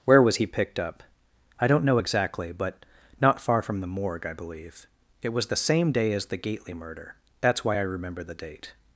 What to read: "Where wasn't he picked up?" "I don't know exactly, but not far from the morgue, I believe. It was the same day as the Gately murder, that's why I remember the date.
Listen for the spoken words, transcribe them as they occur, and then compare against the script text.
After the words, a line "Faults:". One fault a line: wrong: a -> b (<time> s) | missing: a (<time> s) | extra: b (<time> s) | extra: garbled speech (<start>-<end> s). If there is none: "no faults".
"Where was he picked up?" "I don't know exactly, but not far from the morgue, I believe. It was the same day as the Gately murder, that's why I remember the date.
Faults:
wrong: wasn't -> was (0.2 s)